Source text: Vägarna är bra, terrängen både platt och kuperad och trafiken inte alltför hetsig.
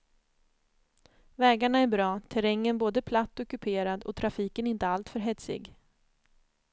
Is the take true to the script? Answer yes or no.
yes